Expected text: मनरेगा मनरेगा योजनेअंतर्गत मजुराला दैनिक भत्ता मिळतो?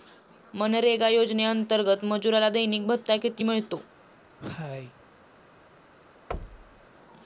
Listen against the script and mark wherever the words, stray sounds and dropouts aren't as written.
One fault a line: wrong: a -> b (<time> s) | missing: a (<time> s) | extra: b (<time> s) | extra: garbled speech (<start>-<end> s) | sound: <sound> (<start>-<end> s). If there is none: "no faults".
missing: मनरेगा (1.1 s)
extra: किती (3.2 s)
sound: cough (4.4-5.0 s)
sound: thud (6.3-6.9 s)